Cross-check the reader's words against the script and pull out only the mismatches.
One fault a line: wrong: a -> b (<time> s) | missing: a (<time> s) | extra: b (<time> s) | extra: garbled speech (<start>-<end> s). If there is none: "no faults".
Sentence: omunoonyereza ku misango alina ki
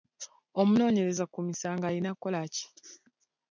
extra: kukola (2.1 s)